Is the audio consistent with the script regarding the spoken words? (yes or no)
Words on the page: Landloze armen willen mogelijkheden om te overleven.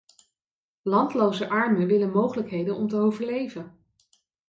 yes